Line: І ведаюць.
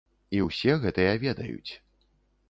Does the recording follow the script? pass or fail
fail